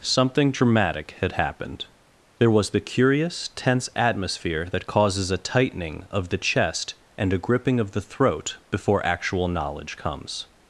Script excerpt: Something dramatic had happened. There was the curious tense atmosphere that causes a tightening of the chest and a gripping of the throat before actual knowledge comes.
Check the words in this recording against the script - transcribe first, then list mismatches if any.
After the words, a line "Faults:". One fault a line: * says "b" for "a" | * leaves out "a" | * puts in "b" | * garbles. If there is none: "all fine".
Something dramatic had happened. There was the curious tense atmosphere that causes a tightening of the chest and a gripping of the throat before actual knowledge comes.
Faults:
all fine